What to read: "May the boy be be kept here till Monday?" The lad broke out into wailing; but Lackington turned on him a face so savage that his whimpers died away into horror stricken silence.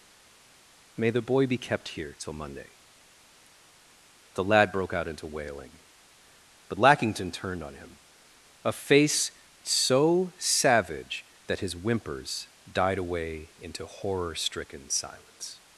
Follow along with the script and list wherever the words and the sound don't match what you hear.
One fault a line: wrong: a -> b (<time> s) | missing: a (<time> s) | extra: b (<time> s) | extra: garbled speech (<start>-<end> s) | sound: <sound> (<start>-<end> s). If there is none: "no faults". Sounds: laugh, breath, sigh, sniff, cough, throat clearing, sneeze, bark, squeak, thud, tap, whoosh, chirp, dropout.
missing: be (1.6 s)